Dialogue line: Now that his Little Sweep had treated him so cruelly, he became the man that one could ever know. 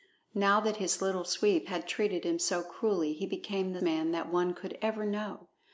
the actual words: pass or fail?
pass